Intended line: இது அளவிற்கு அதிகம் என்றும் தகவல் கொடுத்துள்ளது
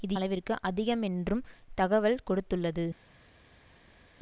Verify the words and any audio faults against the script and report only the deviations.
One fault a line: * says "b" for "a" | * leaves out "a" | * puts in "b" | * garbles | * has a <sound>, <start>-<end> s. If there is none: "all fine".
all fine